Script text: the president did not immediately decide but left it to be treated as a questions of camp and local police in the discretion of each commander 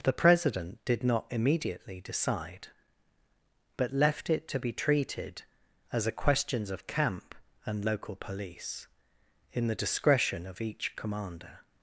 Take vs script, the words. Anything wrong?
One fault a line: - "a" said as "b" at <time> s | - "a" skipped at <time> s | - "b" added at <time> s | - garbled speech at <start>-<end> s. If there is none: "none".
none